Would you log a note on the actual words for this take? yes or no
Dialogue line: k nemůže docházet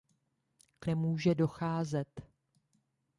no